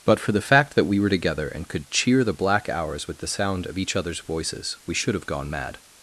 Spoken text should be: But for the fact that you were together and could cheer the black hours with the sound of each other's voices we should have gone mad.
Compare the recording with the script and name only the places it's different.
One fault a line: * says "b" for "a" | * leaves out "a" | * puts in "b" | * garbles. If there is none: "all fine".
* says "we" for "you"